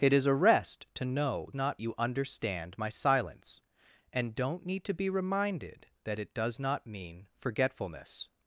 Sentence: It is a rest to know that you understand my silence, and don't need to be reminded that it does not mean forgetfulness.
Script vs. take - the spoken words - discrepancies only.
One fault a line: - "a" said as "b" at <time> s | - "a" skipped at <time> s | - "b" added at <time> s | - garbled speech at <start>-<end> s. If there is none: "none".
- "that" said as "not" at 1.5 s